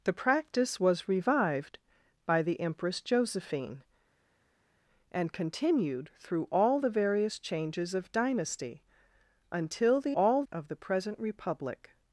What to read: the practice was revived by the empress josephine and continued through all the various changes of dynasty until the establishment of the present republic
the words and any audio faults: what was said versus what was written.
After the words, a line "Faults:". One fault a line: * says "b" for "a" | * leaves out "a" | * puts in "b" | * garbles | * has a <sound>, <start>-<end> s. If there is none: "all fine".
the practice was revived by the empress josephine and continued through all the various changes of dynasty until the all of the present republic
Faults:
* says "all" for "establishment"